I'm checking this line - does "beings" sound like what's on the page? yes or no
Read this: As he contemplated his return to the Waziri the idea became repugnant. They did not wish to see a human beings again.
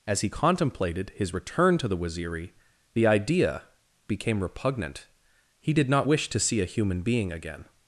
no